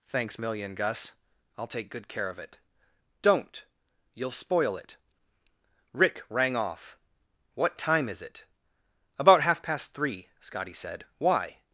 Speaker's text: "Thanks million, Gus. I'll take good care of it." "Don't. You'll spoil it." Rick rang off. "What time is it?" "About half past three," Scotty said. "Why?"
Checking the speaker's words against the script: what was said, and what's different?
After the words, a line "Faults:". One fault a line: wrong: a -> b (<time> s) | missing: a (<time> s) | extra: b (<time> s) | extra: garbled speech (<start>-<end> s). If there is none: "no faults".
"Thanks million, Gus. I'll take good care of it." "Don't. You'll spoil it." Rick rang off. "What time is it?" "About half past three," Scotty said. "Why?"
Faults:
no faults